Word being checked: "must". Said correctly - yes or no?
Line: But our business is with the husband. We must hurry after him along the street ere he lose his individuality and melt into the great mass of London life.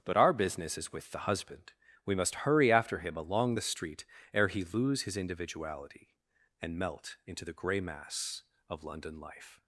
yes